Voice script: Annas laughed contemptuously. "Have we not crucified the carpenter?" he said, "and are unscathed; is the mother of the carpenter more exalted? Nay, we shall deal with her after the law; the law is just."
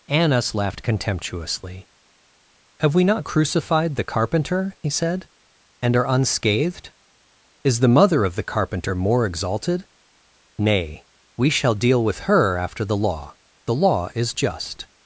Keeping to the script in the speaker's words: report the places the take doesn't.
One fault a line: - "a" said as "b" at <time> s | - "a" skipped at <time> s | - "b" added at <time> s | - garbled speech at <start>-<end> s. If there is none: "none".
none